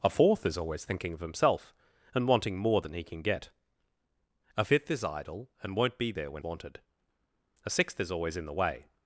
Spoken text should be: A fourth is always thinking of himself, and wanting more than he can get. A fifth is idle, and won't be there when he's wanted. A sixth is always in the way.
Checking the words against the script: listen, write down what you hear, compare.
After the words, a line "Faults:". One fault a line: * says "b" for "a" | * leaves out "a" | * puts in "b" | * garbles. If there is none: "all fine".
A fourth is always thinking of himself, and wanting more than he can get. A fifth is idle, and won't be there when wanted. A sixth is always in the way.
Faults:
* leaves out "he's"